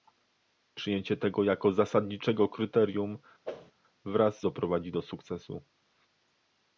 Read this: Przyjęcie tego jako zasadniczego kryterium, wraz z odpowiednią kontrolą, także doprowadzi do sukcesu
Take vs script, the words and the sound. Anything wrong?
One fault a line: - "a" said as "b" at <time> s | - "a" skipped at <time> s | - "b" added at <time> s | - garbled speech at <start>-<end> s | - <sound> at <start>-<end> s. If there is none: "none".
- whoosh at 3.4-3.7 s
- "odpowiednią kontrolą także" skipped at 4.4 s